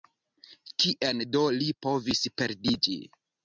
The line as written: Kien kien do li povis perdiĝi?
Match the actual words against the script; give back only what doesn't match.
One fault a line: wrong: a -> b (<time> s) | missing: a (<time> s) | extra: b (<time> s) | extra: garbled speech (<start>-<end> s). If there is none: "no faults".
missing: kien (1.2 s)